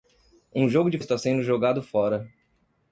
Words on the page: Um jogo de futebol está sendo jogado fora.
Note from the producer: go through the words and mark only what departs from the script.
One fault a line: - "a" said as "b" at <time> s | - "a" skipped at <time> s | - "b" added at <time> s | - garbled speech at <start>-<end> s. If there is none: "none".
- "futebol" skipped at 1.0 s